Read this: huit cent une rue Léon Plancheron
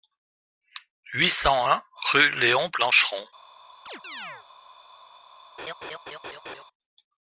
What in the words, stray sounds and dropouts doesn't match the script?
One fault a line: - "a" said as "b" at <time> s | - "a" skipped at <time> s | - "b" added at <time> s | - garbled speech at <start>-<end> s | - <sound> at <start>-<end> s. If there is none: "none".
- "une" said as "un" at 1.7 s
- chirp at 3.9-4.5 s
- laugh at 5.6-6.6 s